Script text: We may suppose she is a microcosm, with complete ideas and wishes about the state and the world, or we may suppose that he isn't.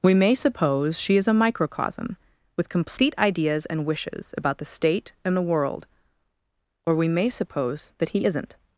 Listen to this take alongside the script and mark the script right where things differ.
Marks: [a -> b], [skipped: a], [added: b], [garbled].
We may suppose she is a microcosm, with complete ideas and wishes about the state and the world, or we may suppose that he isn't.